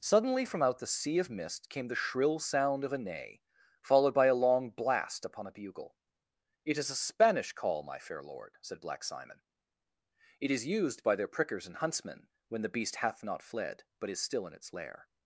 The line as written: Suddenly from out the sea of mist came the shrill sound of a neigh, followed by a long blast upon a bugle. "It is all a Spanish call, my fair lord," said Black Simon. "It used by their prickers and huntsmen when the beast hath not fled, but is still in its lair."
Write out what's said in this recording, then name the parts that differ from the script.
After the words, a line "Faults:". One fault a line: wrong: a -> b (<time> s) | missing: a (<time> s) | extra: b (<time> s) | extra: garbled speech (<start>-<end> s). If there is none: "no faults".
Suddenly from out the sea of mist came the shrill sound of a neigh, followed by a long blast upon a bugle. "It is a Spanish call, my fair lord," said Black Simon. "It is used by their prickers and huntsmen when the beast hath not fled, but is still in its lair."
Faults:
missing: all (6.9 s)
extra: is (10.5 s)